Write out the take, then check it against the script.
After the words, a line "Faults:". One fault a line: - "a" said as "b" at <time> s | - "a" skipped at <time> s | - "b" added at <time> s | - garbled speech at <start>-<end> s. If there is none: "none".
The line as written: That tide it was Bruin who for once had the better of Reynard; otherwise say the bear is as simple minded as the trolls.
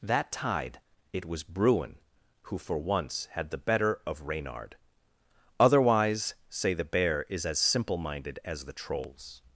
That tide it was Bruin who for once had the better of Reynard; otherwise say the bear is as simple minded as the trolls.
Faults:
none